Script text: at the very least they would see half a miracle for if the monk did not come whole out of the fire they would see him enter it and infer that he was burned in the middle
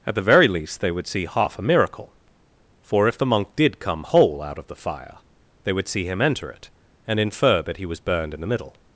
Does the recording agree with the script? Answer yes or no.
no